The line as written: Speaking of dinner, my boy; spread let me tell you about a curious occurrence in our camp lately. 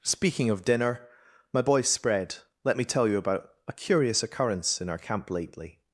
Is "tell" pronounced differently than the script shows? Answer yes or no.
no